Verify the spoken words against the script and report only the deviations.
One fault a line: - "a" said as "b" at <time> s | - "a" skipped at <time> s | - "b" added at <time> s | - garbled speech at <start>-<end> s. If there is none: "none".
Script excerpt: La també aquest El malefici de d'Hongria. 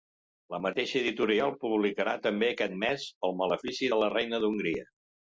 - "mateixa editorial publicarà" added at 0.7 s
- "mes" added at 2.8 s
- "la reina" added at 4.0 s